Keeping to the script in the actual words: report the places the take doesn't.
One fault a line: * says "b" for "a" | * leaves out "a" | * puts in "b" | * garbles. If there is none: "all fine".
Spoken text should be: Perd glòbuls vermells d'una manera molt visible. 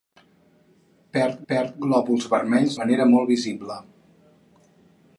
* puts in "perd"
* leaves out "d'una"